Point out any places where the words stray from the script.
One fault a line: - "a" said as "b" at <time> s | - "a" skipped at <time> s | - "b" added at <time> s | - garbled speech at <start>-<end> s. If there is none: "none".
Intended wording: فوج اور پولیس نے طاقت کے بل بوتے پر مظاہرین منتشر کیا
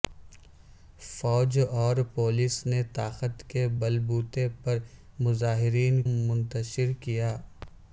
none